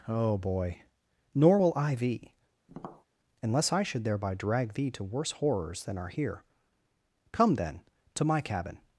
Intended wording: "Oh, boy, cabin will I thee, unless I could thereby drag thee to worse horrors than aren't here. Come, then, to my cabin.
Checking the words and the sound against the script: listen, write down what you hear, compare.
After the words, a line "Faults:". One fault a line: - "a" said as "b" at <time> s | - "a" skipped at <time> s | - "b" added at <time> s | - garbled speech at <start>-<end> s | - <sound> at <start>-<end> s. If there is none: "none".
"Oh, boy, nor will I thee, unless I should thereby drag thee to worse horrors than are here. Come, then, to my cabin.
Faults:
- "cabin" said as "nor" at 1.4 s
- tap at 2.7-3.1 s
- "could" said as "should" at 3.8 s
- "aren't" said as "are" at 6.0 s